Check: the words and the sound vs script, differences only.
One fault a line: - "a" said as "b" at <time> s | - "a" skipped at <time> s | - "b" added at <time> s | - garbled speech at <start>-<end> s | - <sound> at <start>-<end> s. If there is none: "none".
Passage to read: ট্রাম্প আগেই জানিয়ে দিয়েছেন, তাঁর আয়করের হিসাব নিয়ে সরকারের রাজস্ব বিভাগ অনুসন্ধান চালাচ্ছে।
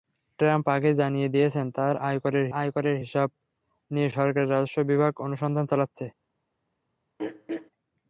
- "আয়করের" added at 2.6 s
- throat clearing at 7.2-7.7 s